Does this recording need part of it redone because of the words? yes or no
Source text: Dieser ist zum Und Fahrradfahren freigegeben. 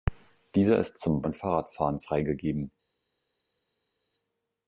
no